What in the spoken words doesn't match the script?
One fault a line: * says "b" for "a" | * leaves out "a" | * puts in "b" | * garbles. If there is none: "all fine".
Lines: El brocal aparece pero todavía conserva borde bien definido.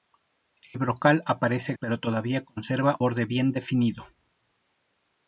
all fine